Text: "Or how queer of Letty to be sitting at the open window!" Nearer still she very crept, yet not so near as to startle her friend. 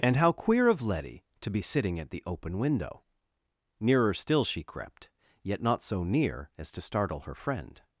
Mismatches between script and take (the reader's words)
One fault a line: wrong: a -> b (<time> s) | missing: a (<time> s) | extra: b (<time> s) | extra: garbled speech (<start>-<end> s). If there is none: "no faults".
wrong: Or -> And (0.0 s)
missing: very (4.6 s)